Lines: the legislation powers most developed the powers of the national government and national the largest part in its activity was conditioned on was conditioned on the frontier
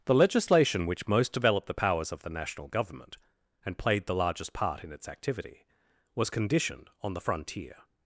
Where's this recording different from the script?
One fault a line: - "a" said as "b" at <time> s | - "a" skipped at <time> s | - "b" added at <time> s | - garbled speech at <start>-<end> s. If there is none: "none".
- "powers" said as "which" at 0.9 s
- "national" said as "played" at 3.8 s
- "was conditioned on" skipped at 7.1 s